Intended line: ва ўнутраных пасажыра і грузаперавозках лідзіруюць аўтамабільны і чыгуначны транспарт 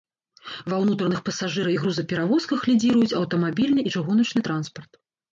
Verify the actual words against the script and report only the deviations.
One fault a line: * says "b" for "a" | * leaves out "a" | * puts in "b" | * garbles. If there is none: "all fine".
all fine